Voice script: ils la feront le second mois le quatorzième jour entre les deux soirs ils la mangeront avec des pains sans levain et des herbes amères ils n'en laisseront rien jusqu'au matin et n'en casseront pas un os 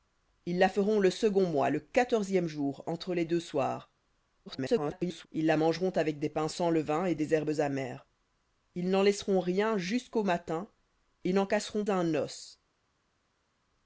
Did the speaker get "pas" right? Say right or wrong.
wrong